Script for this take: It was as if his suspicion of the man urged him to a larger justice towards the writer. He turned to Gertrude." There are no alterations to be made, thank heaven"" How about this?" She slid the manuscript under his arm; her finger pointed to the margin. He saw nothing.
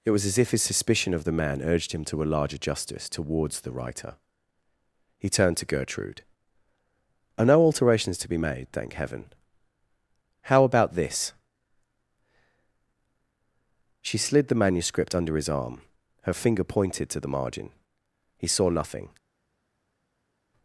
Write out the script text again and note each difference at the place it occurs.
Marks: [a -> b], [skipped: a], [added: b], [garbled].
It was as if his suspicion of the man urged him to a larger justice towards the writer. He turned to Gertrude." [skipped: There] are no alterations to be made, thank heaven"" How about this?" She slid the manuscript under his arm; her finger pointed to the margin. He saw nothing.